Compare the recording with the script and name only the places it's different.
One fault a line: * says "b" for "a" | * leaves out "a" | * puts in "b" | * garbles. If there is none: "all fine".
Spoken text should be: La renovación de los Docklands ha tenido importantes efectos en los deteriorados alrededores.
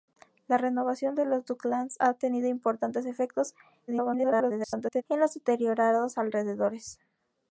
* garbles